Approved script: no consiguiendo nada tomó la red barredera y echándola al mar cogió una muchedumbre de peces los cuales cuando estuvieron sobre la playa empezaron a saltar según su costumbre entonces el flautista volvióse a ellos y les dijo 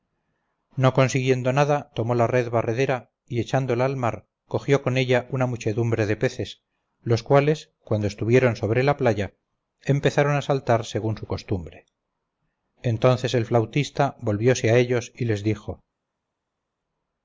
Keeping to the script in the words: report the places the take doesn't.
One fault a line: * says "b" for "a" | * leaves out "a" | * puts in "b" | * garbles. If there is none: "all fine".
* puts in "con ella"